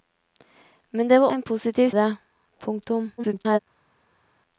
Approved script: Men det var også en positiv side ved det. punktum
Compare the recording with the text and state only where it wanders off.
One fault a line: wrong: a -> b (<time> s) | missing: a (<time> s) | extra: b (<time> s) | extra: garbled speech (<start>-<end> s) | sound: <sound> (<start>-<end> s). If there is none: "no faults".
missing: også (1.3 s)
missing: side ved (1.9 s)
extra: garbled speech (3.2-3.6 s)